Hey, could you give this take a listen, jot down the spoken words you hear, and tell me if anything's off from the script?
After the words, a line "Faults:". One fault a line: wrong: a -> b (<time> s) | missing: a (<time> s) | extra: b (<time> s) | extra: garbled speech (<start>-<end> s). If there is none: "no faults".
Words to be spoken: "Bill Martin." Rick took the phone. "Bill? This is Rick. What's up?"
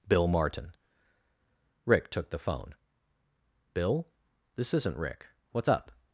"Bill Martin." Rick took the phone. "Bill? This isn't Rick. What's up?"
Faults:
wrong: is -> isn't (4.7 s)